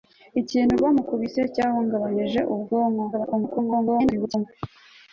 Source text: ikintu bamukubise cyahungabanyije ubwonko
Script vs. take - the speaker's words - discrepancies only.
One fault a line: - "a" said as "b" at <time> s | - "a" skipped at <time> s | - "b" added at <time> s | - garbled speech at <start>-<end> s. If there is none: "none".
- garbled speech at 3.1-4.5 s